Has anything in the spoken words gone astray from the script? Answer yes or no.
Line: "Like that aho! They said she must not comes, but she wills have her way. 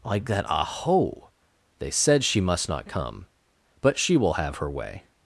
yes